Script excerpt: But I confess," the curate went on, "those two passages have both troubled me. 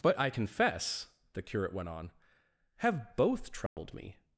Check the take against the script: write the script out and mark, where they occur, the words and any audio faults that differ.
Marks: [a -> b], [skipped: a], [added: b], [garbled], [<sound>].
But I confess," the curate went on, [skipped: "those two passages] have both troubled [dropout] me.